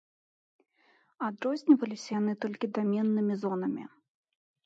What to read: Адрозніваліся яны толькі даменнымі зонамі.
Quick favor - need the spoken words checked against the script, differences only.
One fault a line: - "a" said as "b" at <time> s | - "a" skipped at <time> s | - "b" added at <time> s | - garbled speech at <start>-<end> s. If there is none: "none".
none